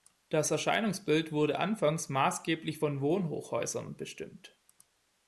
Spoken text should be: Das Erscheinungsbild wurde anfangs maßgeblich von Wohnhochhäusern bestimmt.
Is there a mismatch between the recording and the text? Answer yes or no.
no